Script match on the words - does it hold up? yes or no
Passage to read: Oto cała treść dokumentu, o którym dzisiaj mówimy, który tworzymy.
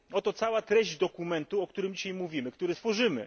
yes